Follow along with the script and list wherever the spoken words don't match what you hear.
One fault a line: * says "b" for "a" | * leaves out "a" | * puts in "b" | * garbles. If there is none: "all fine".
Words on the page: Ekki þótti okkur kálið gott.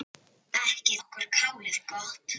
* leaves out "þótti"